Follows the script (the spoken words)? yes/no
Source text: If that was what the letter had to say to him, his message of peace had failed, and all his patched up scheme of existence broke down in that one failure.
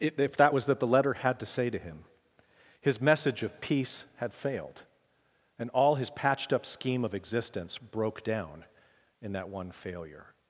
no